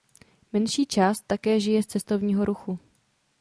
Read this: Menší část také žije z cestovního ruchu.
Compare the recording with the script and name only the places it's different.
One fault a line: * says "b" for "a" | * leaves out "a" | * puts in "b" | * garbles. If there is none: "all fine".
all fine